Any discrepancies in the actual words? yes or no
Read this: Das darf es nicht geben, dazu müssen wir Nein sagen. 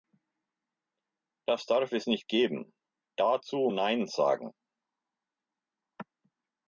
yes